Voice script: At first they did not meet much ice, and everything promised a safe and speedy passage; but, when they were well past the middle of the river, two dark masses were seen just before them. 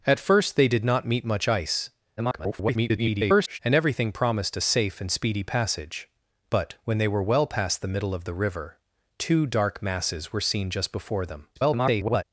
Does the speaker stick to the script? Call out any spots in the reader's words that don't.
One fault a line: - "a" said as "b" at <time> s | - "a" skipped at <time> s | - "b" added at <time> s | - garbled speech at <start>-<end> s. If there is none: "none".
- garbled speech at 2.2-3.6 s
- garbled speech at 11.6-12.2 s